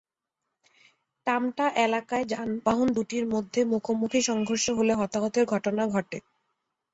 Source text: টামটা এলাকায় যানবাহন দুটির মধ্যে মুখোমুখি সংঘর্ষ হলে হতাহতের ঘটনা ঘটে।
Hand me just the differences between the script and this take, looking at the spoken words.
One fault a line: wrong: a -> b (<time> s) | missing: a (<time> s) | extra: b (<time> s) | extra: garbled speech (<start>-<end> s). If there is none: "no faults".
no faults